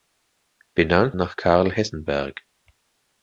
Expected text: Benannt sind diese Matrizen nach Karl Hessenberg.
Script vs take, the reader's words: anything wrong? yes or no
yes